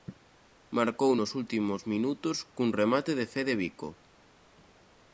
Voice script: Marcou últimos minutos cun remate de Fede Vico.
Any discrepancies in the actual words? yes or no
yes